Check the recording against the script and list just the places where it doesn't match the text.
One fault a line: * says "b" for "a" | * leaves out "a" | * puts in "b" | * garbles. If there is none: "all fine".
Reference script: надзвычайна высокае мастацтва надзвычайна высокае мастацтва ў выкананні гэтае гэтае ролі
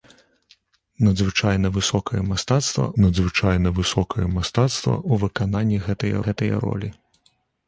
all fine